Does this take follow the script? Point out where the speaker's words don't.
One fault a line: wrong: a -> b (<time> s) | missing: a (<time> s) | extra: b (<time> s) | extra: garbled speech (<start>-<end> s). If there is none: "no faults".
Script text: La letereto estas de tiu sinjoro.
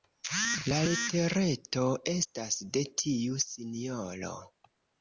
no faults